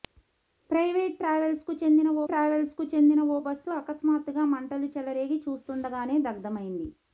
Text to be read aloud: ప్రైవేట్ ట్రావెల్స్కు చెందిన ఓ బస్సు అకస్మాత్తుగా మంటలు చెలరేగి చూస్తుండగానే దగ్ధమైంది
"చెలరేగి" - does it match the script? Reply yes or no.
yes